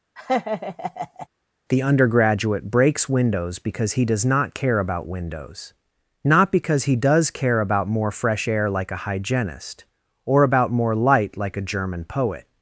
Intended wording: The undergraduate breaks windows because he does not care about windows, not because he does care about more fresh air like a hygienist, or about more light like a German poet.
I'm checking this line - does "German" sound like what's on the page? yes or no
yes